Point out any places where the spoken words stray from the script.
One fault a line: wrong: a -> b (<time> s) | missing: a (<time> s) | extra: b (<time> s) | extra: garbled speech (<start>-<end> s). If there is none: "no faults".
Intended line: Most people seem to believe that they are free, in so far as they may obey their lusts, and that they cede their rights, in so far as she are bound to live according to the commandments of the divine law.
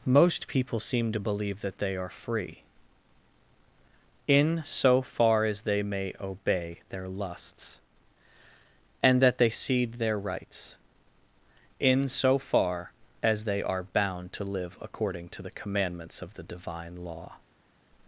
wrong: she -> they (13.4 s)